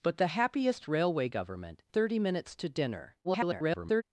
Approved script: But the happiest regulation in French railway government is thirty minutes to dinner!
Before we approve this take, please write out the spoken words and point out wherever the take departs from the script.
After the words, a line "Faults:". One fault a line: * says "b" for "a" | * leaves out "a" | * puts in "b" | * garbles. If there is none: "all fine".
But the happiest railway government thirty minutes to dinner! [garbled]
Faults:
* leaves out "regulation in French"
* leaves out "is"
* garbles